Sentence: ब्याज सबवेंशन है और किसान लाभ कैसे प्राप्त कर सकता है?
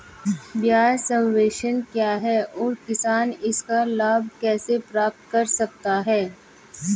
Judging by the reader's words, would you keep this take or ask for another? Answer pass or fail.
fail